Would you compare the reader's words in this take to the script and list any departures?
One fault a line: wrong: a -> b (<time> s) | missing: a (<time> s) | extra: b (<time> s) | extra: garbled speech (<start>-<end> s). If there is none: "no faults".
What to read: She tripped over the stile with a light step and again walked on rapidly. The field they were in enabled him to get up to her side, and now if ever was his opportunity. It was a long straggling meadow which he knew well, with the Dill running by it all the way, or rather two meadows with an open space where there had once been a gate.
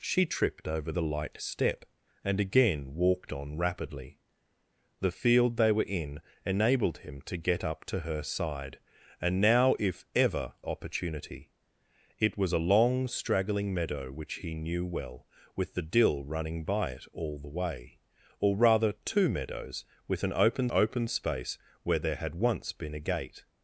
missing: the stile with (0.9 s)
missing: was his (10.5 s)
extra: open (20.7 s)